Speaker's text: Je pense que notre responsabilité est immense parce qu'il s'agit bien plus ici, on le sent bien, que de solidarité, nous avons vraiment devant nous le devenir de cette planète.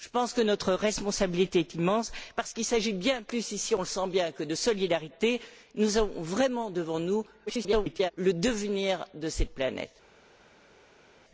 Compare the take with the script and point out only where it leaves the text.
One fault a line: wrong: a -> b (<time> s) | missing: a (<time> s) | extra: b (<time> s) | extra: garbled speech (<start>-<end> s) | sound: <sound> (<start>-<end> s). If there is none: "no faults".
extra: garbled speech (7.5-8.1 s)